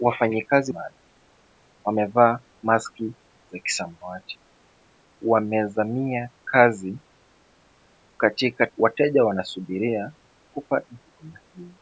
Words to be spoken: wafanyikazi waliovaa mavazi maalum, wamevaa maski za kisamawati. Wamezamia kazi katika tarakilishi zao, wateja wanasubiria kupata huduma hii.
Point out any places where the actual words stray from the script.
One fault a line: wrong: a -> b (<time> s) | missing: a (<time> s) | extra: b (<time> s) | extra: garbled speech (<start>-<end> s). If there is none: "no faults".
missing: waliovaa mavazi (0.7 s)
missing: tarakilishi zao (8.7 s)